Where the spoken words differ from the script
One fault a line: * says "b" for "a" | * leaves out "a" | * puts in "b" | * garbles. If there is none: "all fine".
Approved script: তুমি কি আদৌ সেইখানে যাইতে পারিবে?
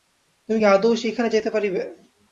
all fine